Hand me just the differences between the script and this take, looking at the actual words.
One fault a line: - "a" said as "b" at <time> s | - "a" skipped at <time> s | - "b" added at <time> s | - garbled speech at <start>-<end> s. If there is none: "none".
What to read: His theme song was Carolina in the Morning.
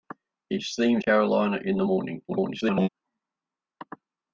- "song was" skipped at 1.0 s
- garbled speech at 2.3-2.9 s